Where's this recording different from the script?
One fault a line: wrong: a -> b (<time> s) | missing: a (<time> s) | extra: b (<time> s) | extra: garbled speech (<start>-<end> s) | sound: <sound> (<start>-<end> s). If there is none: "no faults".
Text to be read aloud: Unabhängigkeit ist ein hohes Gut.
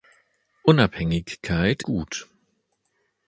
missing: ist ein hohes (1.8 s)